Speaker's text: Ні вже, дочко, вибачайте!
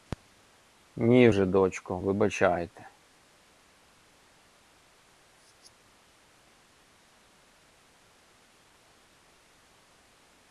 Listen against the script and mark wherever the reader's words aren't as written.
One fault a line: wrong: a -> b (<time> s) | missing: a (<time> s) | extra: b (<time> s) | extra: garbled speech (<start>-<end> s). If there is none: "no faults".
no faults